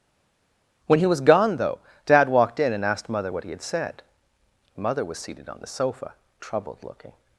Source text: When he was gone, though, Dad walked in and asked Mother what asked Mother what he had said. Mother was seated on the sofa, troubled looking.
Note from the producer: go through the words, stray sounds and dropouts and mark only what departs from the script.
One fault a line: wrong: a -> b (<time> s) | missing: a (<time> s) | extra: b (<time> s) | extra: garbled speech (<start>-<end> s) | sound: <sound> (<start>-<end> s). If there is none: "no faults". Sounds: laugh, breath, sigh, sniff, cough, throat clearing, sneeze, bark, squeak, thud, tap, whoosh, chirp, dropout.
missing: asked Mother what (3.4 s)